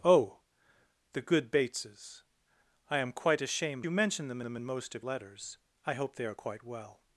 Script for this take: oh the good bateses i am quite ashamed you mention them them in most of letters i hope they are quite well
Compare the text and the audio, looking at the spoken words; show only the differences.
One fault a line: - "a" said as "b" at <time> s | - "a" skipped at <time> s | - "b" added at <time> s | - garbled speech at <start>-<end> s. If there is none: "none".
none